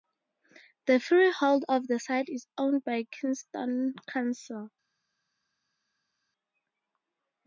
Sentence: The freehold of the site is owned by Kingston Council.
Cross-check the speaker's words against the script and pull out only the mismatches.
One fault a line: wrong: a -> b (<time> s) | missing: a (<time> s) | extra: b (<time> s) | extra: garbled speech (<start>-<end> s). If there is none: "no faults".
no faults